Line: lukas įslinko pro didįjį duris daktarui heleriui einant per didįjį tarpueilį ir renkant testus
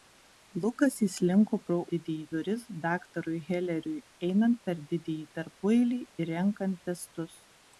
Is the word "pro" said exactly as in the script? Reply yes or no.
yes